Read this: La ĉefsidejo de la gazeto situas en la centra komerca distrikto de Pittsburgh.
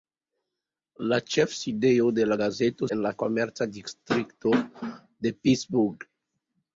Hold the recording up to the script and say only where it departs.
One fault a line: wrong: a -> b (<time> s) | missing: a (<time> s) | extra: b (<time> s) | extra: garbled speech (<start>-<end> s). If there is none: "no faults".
missing: situas (2.9 s)
missing: centra (3.1 s)